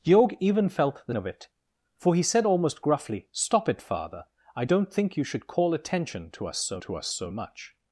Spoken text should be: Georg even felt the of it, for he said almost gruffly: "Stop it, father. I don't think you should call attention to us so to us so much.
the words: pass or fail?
pass